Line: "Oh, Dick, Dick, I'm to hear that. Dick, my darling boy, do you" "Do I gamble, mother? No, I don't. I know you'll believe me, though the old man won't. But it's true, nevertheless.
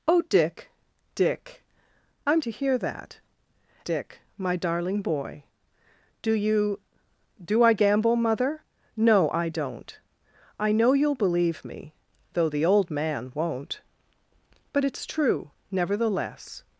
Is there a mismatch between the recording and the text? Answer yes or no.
no